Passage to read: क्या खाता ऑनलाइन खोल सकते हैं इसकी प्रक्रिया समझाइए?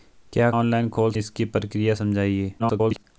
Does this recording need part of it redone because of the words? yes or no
yes